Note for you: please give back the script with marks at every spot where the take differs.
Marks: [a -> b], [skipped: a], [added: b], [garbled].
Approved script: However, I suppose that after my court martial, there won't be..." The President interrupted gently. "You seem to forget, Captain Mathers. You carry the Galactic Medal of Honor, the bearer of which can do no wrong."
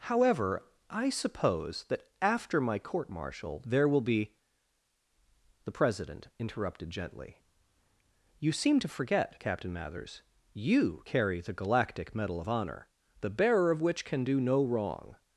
However, I suppose that after my court martial, there [won't -> will] be..." The President interrupted gently. "You seem to forget, Captain Mathers. You carry the Galactic Medal of Honor, the bearer of which can do no wrong."